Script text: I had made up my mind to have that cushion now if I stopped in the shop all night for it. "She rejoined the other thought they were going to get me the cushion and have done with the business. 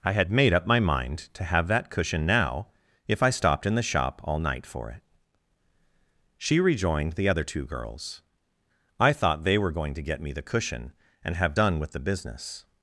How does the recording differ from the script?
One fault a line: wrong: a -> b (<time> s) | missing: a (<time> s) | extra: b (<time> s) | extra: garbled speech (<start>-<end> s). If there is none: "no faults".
extra: two girls I (7.4 s)